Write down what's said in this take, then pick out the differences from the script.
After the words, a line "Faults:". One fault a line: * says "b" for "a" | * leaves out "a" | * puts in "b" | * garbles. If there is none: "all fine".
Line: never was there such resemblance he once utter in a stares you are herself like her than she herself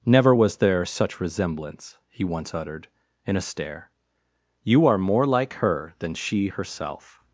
never was there such resemblance he once uttered in a stare you are more like her than she herself
Faults:
* says "uttered" for "utter"
* says "stare" for "stares"
* says "more" for "herself"